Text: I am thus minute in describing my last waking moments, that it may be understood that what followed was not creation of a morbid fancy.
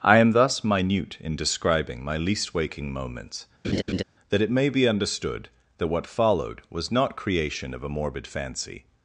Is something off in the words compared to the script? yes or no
yes